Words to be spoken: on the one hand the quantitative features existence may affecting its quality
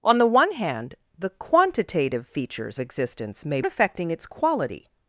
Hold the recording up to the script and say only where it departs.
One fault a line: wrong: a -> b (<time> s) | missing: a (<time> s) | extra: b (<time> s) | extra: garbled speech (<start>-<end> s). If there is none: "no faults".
no faults